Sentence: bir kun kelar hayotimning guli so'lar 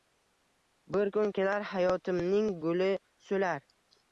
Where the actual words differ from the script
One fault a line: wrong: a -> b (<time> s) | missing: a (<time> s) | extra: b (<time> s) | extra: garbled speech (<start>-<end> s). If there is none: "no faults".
no faults